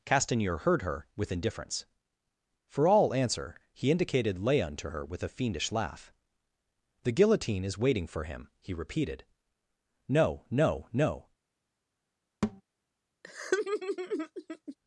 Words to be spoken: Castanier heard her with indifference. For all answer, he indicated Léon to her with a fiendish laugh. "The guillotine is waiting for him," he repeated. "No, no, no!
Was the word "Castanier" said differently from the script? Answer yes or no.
no